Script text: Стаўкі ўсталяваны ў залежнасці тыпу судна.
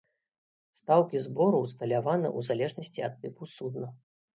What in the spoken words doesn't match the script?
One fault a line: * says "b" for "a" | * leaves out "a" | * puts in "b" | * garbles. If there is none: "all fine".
* puts in "збору"
* puts in "ад"